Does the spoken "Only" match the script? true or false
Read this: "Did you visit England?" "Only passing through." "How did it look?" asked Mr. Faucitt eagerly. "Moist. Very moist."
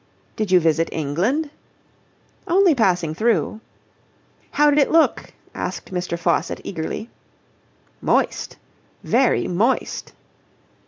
true